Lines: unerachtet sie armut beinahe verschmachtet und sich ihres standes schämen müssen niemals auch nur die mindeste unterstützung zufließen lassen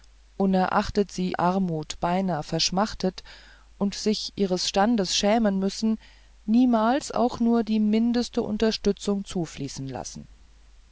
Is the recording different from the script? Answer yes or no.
no